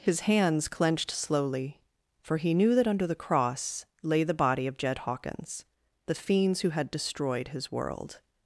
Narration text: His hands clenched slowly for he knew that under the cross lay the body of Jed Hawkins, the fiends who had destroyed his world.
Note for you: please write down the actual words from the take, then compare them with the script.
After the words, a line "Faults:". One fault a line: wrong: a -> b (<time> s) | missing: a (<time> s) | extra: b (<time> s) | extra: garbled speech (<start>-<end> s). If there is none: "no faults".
His hands clenched slowly for he knew that under the cross lay the body of Jed Hawkins, the fiends who had destroyed his world.
Faults:
no faults